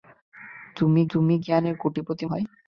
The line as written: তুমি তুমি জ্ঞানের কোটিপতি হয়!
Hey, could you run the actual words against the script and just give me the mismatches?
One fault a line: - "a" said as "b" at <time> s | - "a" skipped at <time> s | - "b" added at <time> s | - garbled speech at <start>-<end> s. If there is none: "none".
none